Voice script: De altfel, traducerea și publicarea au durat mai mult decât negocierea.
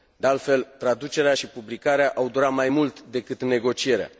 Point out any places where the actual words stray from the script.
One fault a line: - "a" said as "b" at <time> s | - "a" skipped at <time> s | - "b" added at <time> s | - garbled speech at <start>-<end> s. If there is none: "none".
none